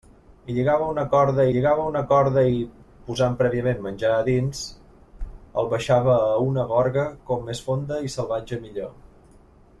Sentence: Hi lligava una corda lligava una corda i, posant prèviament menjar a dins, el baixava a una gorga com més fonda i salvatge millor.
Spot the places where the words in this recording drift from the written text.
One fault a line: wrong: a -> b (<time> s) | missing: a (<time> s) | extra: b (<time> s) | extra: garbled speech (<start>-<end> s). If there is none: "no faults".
no faults